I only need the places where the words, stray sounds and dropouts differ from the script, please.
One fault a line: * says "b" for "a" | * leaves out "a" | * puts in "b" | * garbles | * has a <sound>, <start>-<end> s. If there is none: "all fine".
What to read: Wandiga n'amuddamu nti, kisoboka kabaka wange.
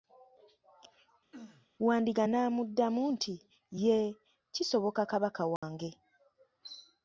* has a throat clearing, 1.3-1.7 s
* puts in "yee"
* has a dropout, 5.6-5.6 s